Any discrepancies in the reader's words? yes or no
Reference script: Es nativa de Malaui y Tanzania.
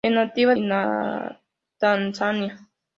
yes